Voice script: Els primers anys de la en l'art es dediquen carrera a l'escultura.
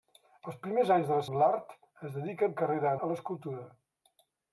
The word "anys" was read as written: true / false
true